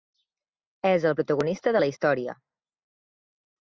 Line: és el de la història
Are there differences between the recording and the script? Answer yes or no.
yes